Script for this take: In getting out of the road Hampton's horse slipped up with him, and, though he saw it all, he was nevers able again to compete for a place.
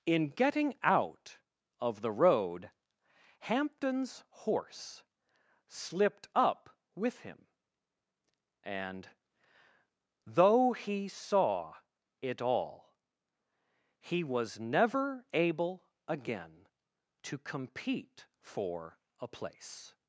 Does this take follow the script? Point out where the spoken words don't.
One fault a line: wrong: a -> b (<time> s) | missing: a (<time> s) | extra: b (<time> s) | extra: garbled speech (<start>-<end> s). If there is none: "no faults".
wrong: nevers -> never (14.6 s)